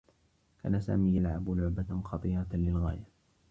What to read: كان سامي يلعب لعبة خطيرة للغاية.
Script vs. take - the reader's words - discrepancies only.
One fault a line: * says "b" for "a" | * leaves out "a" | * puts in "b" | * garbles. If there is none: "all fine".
all fine